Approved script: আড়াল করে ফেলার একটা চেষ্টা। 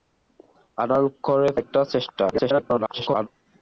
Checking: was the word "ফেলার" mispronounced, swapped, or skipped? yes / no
yes